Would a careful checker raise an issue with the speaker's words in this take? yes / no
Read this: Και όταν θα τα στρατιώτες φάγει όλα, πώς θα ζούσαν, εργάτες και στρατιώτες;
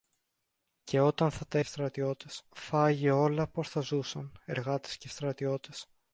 no